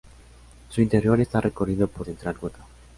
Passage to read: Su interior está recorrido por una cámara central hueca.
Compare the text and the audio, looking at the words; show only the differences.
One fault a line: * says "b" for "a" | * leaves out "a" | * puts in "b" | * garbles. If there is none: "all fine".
* leaves out "una cámara"